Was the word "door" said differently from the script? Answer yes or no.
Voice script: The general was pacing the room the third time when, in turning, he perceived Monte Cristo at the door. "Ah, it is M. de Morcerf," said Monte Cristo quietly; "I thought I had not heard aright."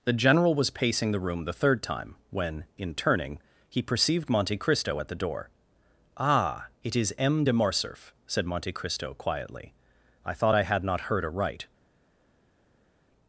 no